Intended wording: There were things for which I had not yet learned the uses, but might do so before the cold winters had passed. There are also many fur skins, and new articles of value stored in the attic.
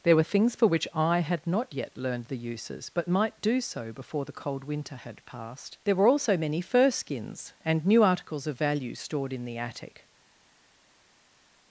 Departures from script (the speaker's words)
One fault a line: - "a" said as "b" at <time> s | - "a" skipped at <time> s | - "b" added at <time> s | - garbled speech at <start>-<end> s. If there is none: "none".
- "winters" said as "winter" at 4.6 s
- "are" said as "were" at 6.0 s